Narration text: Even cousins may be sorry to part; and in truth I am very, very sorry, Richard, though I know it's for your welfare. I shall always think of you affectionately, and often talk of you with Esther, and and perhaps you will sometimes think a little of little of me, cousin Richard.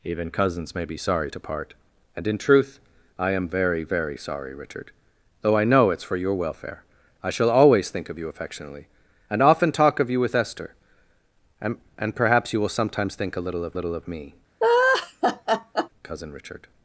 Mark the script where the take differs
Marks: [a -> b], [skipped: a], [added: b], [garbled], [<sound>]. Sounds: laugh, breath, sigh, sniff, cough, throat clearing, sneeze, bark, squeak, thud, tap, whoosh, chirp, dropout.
Even cousins may be sorry to part; and in truth I am very, very sorry, Richard, though I know it's for your welfare. I shall always think of you affectionately, and often talk of you with Esther, and and perhaps you will sometimes think a little of little of me, [laugh] cousin Richard.